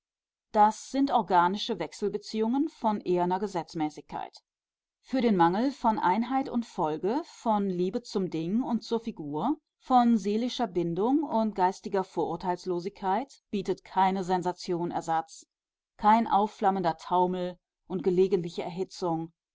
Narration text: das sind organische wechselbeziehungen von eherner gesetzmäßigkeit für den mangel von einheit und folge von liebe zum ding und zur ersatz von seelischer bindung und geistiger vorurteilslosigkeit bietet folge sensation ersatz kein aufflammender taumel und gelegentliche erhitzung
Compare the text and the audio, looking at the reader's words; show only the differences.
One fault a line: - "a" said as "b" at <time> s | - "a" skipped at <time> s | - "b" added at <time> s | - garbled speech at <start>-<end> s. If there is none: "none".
- "ersatz" said as "figur" at 9.0 s
- "folge" said as "keine" at 13.8 s